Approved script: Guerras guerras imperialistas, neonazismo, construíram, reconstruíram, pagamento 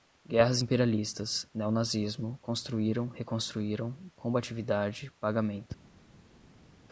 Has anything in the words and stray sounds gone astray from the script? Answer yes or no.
yes